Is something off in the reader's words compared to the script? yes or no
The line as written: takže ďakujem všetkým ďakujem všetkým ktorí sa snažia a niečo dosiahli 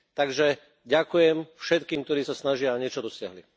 yes